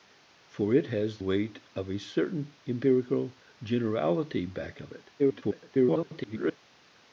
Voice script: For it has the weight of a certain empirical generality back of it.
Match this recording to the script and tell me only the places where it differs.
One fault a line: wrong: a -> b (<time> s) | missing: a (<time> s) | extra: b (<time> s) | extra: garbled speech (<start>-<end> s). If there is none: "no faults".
missing: the (1.2 s)
extra: garbled speech (5.2-6.6 s)